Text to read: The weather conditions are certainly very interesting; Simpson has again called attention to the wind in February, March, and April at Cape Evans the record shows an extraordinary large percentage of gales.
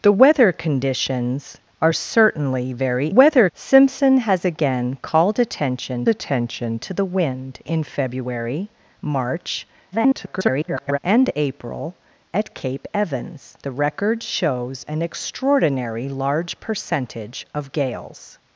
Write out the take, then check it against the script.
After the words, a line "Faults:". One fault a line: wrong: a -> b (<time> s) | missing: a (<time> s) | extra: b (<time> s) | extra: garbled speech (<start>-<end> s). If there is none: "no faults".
The weather conditions are certainly very weather; Simpson has again called attention attention to the wind in February, March, [garbled] and April at Cape Evans the record shows an extraordinary large percentage of gales.
Faults:
wrong: interesting -> weather (3.1 s)
extra: attention (6.1 s)
extra: garbled speech (9.9-11.0 s)